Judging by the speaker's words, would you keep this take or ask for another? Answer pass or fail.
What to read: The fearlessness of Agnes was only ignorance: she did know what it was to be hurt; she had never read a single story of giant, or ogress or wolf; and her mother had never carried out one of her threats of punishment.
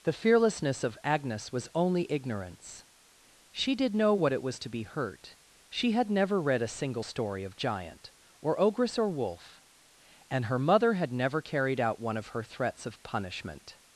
pass